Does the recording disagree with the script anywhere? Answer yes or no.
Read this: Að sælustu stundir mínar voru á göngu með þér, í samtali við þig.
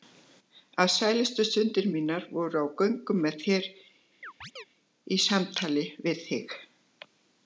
no